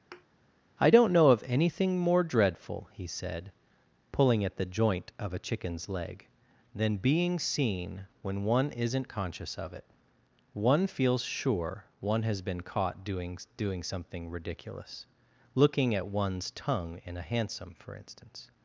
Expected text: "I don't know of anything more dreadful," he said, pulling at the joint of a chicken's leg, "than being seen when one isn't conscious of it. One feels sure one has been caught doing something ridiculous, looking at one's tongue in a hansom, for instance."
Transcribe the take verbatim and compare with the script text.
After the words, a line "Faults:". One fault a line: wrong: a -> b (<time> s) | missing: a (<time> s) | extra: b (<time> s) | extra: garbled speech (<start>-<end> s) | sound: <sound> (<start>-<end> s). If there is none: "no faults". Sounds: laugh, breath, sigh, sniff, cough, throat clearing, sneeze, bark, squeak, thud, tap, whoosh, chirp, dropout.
"I don't know of anything more dreadful," he said, pulling at the joint of a chicken's leg, "than being seen when one isn't conscious of it. One feels sure one has been caught doing doing something ridiculous, looking at one's tongue in a hansom, for instance."
Faults:
sound: thud (0.1-0.3 s)
extra: doing (13.6 s)